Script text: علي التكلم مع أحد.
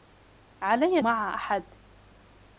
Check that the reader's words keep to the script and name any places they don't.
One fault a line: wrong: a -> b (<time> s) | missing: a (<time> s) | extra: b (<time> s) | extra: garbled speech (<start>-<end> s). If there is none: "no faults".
missing: التكلم (1.0 s)